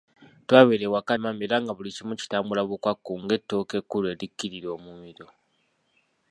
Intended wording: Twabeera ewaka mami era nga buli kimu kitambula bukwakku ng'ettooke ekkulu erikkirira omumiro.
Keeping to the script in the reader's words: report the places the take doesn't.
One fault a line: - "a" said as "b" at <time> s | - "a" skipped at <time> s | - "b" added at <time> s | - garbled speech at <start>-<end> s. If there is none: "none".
none